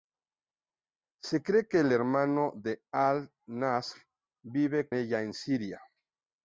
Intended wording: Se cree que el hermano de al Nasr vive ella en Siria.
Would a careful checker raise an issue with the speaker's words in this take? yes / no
no